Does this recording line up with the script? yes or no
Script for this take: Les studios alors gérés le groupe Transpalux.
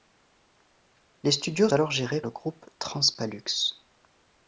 yes